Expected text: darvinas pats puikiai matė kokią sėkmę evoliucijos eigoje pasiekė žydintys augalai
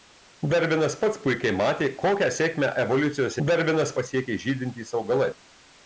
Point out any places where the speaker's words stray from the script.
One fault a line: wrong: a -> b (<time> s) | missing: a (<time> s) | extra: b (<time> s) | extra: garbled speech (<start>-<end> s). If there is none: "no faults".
wrong: eigoje -> darvinas (3.5 s)